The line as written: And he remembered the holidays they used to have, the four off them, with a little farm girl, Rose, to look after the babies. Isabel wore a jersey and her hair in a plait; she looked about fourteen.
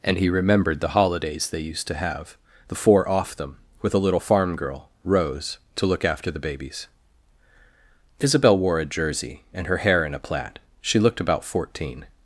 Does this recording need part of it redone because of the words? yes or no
no